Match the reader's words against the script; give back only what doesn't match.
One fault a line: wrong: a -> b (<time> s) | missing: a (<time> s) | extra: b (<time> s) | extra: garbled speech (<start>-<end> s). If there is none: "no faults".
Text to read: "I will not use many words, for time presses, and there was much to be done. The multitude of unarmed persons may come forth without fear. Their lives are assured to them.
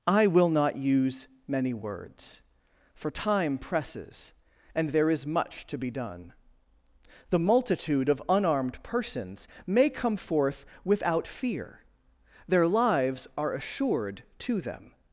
wrong: was -> is (5.1 s)